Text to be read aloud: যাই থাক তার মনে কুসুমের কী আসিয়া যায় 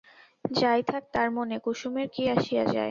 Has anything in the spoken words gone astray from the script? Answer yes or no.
no